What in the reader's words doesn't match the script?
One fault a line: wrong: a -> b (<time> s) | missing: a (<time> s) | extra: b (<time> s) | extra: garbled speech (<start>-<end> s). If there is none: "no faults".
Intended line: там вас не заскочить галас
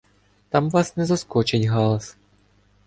no faults